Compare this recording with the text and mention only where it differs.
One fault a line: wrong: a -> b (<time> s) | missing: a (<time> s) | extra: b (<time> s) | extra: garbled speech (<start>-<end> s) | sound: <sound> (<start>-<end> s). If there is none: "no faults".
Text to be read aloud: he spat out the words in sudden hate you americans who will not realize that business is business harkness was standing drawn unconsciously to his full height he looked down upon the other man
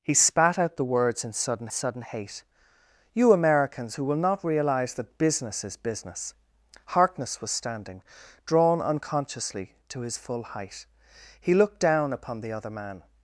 extra: sudden (1.7 s)